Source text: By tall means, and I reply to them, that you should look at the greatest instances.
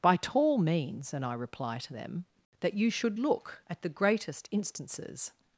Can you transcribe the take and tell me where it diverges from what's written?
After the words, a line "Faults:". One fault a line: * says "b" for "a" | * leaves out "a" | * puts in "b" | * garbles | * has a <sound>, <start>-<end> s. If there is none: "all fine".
By tall means, and I reply to them, that you should look at the greatest instances.
Faults:
all fine